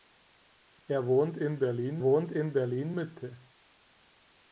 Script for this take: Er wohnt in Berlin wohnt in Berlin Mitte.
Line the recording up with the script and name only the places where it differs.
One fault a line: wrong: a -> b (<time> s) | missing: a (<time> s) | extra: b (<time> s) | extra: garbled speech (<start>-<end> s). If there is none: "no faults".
no faults